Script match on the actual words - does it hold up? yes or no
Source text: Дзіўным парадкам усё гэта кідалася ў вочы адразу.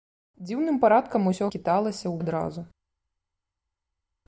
no